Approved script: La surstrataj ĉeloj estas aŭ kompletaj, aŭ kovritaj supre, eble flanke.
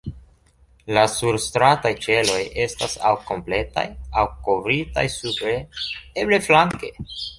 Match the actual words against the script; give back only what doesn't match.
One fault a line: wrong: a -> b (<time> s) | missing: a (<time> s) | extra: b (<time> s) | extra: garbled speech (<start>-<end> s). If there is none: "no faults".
no faults